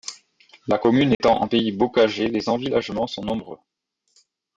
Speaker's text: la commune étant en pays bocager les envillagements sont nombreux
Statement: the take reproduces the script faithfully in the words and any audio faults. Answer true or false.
false